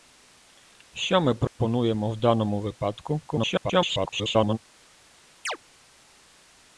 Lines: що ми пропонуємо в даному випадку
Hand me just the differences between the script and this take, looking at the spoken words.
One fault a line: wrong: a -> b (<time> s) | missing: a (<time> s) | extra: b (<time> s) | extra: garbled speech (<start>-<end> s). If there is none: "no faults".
extra: garbled speech (3.3-4.6 s)